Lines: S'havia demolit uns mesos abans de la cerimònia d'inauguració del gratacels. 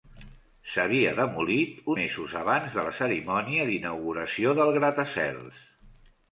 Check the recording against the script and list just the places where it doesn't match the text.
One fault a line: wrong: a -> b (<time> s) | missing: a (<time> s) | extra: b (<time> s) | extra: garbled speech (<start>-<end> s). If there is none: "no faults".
missing: uns (1.9 s)